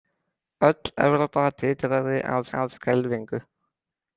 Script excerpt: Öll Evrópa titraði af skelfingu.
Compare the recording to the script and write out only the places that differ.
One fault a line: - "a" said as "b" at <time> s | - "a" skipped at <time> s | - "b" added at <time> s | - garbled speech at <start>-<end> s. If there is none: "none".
- "af" added at 2.6 s